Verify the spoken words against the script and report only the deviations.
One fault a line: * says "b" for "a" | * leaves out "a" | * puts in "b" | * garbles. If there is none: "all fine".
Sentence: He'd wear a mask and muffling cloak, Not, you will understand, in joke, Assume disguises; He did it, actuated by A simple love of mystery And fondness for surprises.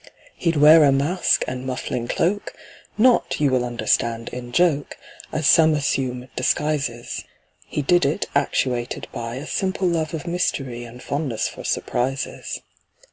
* puts in "As some"